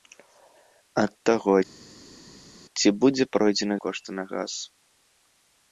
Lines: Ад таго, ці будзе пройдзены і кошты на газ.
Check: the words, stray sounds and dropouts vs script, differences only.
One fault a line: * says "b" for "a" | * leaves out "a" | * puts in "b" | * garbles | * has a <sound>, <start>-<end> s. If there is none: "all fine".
all fine